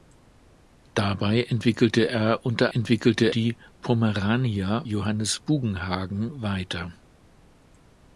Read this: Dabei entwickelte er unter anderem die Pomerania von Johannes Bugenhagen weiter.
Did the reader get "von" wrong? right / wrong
wrong